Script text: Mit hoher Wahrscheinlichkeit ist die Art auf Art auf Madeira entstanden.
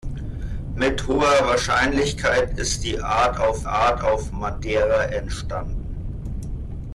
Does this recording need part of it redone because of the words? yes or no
no